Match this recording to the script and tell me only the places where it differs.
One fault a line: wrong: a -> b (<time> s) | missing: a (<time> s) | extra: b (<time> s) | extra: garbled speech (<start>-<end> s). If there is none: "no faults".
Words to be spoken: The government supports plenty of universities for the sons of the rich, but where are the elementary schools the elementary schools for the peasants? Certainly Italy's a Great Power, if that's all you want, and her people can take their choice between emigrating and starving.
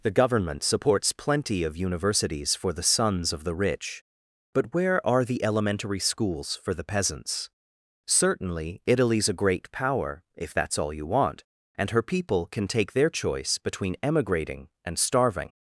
missing: the elementary schools (6.6 s)